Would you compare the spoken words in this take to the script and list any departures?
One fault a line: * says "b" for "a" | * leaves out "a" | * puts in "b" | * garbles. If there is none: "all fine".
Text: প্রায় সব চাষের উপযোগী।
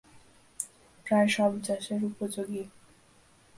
all fine